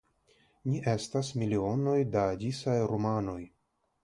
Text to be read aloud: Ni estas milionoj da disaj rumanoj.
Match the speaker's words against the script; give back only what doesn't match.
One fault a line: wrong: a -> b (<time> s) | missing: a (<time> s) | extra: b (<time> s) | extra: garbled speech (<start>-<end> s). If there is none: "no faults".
no faults